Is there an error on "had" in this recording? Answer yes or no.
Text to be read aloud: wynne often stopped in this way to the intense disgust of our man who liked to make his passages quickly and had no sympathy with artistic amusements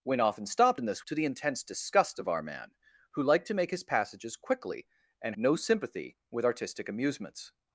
yes